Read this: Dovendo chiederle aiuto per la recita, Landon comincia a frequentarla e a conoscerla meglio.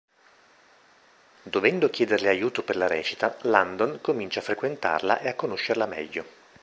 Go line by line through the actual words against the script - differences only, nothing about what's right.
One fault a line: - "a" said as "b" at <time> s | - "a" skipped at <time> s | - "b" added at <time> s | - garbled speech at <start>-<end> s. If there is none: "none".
none